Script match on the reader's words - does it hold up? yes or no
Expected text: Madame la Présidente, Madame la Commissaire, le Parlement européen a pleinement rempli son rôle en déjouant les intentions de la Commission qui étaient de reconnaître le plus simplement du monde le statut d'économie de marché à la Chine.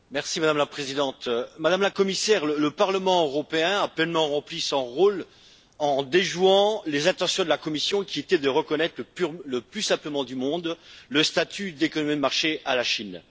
yes